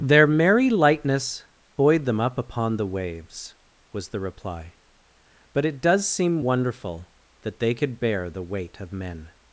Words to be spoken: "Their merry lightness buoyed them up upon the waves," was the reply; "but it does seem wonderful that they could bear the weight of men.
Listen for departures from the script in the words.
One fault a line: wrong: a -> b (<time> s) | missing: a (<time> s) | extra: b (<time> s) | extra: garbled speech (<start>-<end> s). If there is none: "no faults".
no faults